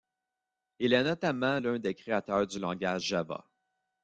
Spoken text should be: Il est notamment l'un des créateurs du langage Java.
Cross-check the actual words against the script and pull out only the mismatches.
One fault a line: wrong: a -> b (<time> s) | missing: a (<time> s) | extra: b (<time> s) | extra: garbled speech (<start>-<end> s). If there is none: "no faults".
no faults